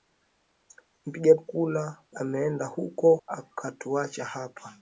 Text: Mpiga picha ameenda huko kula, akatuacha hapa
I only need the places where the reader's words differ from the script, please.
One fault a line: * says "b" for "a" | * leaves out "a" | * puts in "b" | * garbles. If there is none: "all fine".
* says "kula" for "picha"
* leaves out "kula"